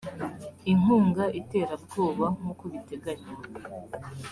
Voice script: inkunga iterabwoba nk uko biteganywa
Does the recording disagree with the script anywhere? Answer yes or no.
no